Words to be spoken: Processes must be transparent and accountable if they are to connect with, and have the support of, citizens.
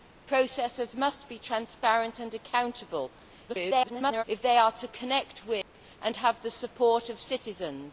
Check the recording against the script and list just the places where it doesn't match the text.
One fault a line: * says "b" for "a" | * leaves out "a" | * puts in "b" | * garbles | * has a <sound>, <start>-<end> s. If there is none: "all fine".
* garbles
* has a dropout, 5.6-5.7 s